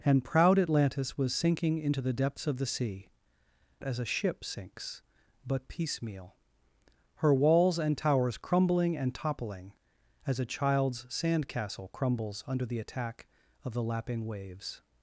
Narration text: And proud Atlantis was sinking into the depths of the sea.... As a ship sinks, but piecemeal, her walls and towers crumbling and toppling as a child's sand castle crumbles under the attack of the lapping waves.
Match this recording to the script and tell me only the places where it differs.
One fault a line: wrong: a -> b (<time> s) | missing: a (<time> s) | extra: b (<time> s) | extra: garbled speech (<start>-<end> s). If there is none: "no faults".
no faults